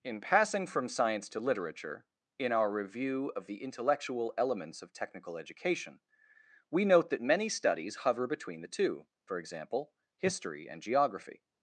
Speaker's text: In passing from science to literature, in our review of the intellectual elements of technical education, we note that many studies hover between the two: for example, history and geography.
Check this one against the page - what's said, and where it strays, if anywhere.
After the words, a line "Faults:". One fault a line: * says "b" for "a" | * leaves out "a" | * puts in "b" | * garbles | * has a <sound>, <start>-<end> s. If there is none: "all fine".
In passing from science to literature, in our review of the intellectual elements of technical education, we note that many studies hover between the two: for example, history and geography.
Faults:
all fine